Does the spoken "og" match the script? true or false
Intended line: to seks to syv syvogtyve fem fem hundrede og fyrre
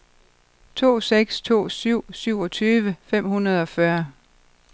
true